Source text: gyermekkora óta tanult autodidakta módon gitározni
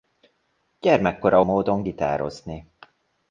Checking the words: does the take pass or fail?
fail